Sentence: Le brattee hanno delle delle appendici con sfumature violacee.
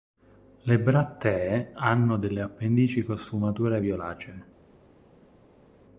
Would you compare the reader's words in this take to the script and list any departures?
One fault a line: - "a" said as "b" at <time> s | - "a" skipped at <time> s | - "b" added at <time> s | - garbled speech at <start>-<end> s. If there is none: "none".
- "delle" skipped at 2.4 s